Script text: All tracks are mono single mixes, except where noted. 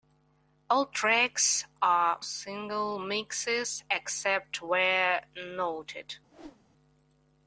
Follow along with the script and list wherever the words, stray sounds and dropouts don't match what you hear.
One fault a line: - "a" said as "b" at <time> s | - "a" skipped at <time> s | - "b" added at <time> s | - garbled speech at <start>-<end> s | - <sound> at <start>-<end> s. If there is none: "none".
- "mono" skipped at 2.2 s
- whoosh at 6.3-6.7 s